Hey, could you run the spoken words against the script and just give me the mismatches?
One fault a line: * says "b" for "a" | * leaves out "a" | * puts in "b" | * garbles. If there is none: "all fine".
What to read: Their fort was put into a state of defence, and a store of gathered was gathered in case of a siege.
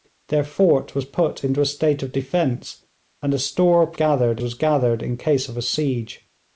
all fine